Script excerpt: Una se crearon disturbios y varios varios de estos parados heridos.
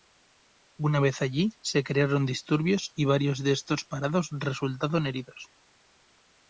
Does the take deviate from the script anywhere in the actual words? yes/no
yes